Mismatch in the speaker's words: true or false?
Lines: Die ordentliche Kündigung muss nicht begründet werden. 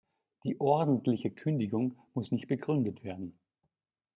false